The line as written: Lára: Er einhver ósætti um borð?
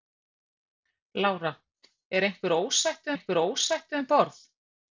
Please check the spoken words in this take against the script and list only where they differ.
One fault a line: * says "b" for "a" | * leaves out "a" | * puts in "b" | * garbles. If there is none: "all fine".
* puts in "einhver ósætti"